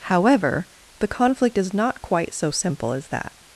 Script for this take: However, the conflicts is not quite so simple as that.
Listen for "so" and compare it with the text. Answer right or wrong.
right